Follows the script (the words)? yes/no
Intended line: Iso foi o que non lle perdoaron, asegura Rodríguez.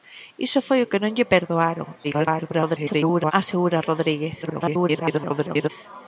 no